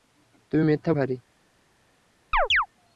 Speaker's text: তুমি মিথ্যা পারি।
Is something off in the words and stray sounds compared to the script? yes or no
yes